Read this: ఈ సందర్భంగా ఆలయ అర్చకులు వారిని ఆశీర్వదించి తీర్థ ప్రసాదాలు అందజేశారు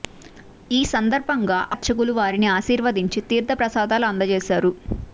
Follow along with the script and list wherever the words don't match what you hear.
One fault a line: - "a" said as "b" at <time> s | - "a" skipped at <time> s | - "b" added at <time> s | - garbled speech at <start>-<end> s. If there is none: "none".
- "ఆలయ" skipped at 1.6 s